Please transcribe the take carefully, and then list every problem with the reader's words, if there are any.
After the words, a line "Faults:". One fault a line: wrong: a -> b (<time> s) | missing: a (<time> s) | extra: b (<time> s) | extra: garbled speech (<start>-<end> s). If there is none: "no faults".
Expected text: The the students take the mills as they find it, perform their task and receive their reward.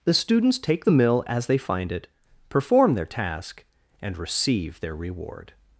The students take the mill as they find it, perform their task and receive their reward.
Faults:
missing: the (0.1 s)
wrong: mills -> mill (0.9 s)